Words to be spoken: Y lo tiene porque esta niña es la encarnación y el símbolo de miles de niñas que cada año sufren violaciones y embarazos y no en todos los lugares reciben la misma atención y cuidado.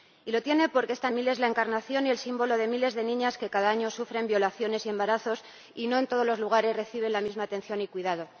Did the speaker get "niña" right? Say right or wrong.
wrong